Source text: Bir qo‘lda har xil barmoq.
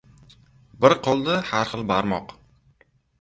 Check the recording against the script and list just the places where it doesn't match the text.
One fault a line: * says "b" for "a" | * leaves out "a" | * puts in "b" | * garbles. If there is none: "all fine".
all fine